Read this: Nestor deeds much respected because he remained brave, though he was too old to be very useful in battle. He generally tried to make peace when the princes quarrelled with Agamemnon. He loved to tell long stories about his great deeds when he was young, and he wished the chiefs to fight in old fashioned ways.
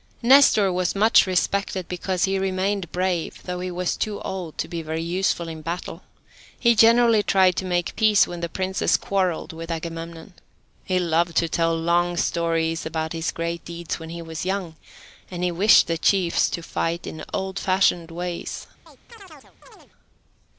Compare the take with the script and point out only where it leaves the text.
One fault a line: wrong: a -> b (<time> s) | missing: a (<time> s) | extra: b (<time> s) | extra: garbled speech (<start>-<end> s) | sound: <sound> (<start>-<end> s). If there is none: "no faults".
wrong: deeds -> was (0.7 s)
sound: chirp (18.9-19.9 s)